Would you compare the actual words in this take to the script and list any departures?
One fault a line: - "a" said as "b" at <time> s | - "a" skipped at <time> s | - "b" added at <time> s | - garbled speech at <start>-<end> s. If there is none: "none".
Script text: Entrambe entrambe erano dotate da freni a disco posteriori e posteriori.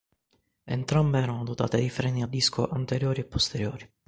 - "entrambe" skipped at 1.2 s
- "da" said as "di" at 1.8 s
- "posteriori" said as "anteriori" at 2.7 s